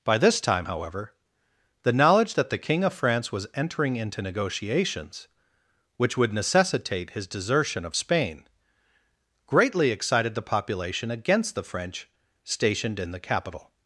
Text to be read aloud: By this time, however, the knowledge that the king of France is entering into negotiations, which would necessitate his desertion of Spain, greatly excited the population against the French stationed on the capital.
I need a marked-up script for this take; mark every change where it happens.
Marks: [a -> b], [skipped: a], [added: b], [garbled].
By this time, however, the knowledge that the king of France [is -> was] entering into negotiations, which would necessitate his desertion of Spain, greatly excited the population against the French stationed [on -> in] the capital.